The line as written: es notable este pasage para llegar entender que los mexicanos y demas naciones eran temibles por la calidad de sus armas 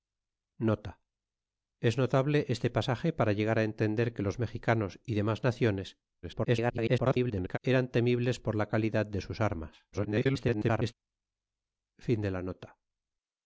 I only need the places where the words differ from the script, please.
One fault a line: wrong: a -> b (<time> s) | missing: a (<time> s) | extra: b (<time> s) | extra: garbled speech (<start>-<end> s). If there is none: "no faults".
extra: garbled speech (6.2-7.6 s)
extra: garbled speech (9.9-10.9 s)